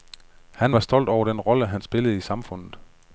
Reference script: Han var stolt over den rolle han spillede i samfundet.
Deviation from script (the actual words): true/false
false